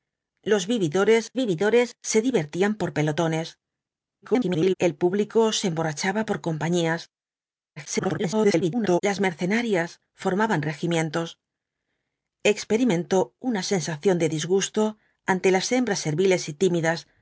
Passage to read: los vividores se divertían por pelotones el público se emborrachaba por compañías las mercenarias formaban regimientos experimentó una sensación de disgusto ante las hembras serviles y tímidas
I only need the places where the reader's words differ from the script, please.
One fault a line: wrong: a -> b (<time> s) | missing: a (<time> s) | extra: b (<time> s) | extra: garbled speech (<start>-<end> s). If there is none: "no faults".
extra: vividores (1.4 s)
extra: garbled speech (4.2-4.7 s)
extra: garbled speech (7.8-9.0 s)